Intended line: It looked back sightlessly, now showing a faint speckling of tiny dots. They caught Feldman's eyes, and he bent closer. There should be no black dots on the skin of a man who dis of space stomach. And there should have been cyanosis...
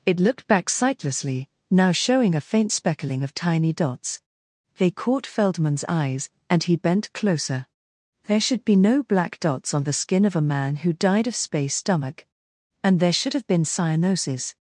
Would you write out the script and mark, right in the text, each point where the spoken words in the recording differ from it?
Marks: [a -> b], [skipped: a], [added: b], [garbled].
It looked back sightlessly, now showing a faint speckling of tiny dots. They caught Feldman's eyes, and he bent closer. There should be no black dots on the skin of a man who [dis -> died] of space stomach. And there should have been cyanosis...